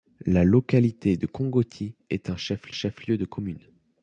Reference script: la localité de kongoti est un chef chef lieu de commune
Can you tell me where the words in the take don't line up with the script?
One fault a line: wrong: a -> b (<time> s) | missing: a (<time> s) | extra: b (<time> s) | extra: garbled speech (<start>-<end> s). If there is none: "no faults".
no faults